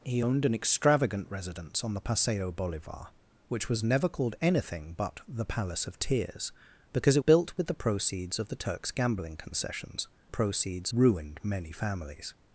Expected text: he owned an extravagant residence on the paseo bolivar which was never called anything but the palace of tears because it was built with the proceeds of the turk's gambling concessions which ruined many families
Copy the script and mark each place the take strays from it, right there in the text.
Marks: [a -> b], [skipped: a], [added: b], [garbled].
he owned an extravagant residence on the paseo bolivar which was never called anything but the palace of tears because it [skipped: was] built with the proceeds of the turk's gambling concessions [which -> proceeds] ruined many families